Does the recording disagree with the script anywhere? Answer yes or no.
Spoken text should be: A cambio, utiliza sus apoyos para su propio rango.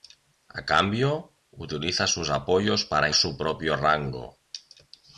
no